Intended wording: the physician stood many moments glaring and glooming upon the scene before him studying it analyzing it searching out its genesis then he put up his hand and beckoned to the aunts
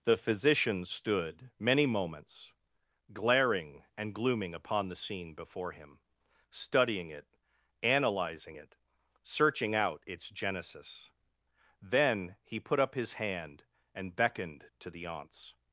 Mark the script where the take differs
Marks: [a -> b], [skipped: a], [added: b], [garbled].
the physician stood many moments glaring and glooming upon the scene before him studying it analyzing it searching out its genesis then he put up his hand and beckoned to the aunts